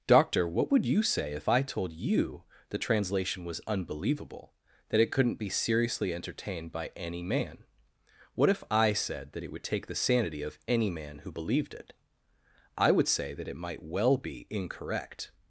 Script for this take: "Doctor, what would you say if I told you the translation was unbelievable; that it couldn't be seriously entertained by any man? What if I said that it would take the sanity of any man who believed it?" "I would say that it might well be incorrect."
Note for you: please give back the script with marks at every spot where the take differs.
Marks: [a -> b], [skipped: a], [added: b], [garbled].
"Doctor, what would you say if I told you the translation was unbelievable; that it couldn't be seriously entertained by any man? What if I said that it would take the sanity of any man who believed it?" "I would say that it might well be incorrect."